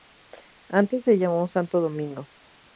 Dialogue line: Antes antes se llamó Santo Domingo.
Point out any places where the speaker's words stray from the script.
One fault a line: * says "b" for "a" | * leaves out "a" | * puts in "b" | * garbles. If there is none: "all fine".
* leaves out "antes"